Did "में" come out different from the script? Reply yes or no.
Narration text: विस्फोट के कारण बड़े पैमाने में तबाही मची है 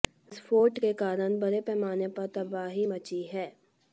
yes